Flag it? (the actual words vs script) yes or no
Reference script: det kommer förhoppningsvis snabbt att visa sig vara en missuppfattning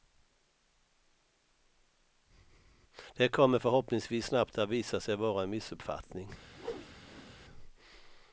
no